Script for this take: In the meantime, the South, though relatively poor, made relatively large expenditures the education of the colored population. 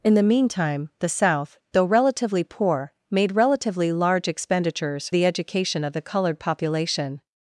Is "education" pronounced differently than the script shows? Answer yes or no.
no